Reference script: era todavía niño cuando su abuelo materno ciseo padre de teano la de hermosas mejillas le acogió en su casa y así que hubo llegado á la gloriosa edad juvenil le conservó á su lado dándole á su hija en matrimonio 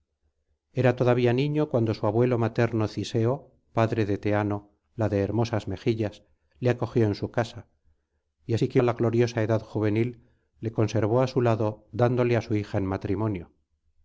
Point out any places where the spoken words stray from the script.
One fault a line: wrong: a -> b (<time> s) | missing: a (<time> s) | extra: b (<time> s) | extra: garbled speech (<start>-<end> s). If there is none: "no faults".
missing: hubo llegado (8.8 s)